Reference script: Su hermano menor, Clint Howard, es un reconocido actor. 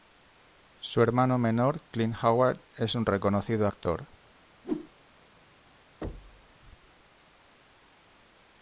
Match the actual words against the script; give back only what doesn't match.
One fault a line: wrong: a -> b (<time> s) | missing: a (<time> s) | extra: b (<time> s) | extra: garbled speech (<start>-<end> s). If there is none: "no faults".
no faults